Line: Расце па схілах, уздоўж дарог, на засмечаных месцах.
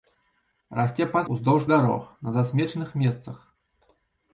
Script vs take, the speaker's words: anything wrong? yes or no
yes